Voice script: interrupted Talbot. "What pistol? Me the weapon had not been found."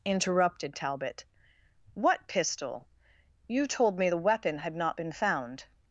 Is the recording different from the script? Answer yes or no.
yes